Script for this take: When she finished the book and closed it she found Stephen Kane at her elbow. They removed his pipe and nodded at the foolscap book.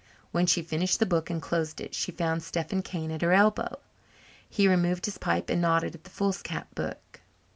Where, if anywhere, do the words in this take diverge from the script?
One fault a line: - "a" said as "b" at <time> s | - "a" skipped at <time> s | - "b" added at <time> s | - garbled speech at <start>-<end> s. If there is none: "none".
- "They" said as "He" at 4.5 s